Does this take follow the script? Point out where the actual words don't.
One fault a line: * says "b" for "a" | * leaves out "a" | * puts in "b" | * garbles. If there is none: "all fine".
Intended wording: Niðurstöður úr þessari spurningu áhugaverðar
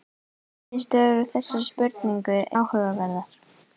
all fine